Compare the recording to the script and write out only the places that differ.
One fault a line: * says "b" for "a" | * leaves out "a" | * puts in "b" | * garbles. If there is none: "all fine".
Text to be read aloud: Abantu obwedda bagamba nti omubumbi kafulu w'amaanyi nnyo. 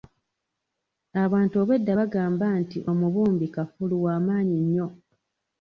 all fine